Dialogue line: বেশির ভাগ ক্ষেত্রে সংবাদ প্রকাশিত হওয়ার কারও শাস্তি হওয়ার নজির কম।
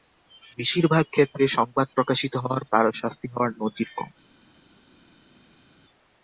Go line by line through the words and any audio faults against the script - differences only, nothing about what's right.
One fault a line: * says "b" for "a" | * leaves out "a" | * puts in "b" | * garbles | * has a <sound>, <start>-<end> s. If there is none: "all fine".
all fine